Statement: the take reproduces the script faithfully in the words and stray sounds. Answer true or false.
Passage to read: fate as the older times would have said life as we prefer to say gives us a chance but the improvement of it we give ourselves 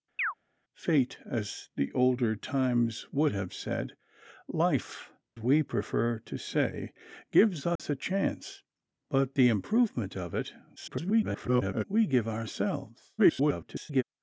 false